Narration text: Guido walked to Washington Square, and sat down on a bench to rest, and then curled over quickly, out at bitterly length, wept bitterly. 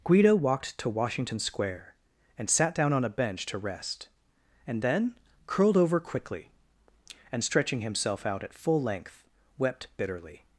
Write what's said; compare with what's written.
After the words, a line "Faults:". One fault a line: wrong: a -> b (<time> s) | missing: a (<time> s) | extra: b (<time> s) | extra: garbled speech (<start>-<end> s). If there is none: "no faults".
Guido walked to Washington Square, and sat down on a bench to rest, and then curled over quickly, and stretching himself out at full length, wept bitterly.
Faults:
extra: and stretching himself (7.3 s)
wrong: bitterly -> full (8.5 s)